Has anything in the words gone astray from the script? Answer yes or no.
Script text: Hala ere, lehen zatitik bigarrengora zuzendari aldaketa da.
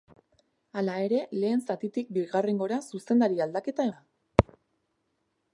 no